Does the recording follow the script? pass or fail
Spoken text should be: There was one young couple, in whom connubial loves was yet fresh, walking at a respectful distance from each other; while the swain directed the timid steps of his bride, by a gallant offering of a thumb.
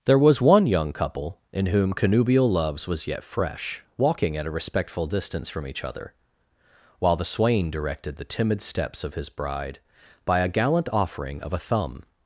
pass